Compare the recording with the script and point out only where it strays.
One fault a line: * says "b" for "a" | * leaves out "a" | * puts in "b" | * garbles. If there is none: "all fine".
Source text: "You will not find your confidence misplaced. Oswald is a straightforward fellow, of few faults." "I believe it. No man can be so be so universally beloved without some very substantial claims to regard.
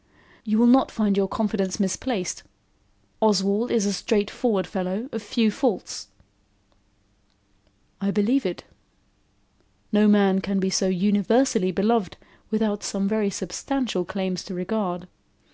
* leaves out "be so"